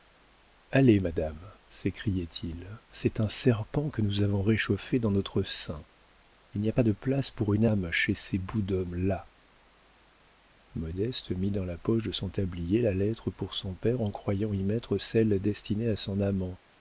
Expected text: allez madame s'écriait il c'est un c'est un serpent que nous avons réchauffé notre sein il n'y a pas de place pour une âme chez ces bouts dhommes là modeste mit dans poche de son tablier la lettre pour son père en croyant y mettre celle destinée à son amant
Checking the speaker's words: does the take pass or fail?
fail